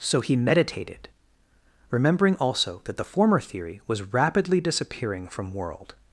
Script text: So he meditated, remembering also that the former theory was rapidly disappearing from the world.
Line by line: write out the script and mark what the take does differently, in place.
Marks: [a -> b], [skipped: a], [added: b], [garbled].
So he meditated, remembering also that the former theory was rapidly disappearing from [skipped: the] world.